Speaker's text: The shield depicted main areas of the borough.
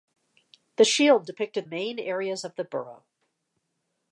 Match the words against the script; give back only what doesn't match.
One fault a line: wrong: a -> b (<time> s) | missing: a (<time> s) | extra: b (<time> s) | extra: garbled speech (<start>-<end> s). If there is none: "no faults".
no faults